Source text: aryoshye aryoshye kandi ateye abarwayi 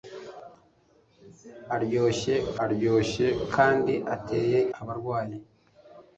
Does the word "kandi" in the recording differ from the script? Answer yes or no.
no